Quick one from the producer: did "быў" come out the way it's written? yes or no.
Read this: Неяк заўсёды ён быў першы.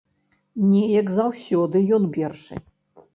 no